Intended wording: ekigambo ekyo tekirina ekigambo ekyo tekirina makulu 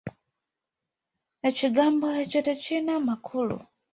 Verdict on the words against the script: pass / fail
fail